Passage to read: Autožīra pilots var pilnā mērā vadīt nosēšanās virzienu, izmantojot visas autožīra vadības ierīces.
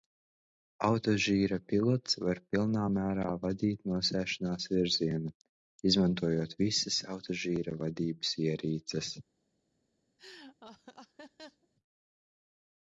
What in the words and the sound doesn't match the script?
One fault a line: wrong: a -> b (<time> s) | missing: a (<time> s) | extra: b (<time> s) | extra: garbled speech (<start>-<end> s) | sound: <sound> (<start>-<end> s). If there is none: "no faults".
sound: laugh (10.2-11.7 s)